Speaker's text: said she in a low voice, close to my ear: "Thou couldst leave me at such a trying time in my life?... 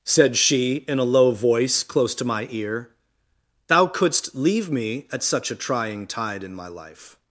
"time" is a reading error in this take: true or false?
true